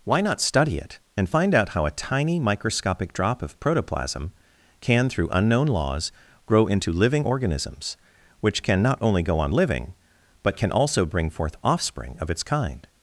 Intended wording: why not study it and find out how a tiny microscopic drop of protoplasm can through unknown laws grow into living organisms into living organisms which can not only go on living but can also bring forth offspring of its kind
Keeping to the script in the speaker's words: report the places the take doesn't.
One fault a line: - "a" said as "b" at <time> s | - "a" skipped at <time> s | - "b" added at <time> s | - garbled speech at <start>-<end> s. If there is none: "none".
- "into living organisms" skipped at 8.0 s